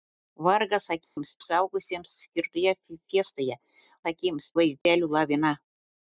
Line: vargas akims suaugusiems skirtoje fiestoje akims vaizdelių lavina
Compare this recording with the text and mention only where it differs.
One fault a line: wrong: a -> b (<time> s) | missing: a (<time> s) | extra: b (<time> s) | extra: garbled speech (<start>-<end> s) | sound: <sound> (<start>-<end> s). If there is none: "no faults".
sound: dropout (1.0-1.2 s)
sound: dropout (4.8-4.9 s)